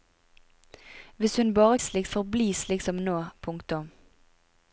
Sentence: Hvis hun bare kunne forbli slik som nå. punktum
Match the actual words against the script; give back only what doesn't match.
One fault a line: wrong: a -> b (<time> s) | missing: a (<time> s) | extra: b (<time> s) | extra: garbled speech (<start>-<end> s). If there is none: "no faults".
wrong: kunne -> slik (1.8 s)